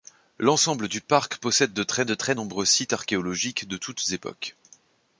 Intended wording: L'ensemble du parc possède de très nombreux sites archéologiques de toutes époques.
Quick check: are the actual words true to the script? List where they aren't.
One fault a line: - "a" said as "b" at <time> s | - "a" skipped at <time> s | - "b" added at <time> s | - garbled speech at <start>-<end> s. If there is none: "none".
- "de très" added at 2.0 s